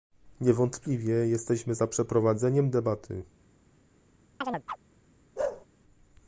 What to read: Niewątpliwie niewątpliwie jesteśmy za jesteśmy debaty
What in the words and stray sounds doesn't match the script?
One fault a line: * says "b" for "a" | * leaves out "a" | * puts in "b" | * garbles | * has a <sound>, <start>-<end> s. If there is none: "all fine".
* leaves out "niewątpliwie"
* says "przeprowadzeniem" for "jesteśmy"
* has a chirp, 4.4-4.8 s
* has a bark, 5.4-5.7 s